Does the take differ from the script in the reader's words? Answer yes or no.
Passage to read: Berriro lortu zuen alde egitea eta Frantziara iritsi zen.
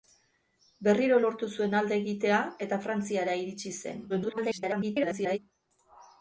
yes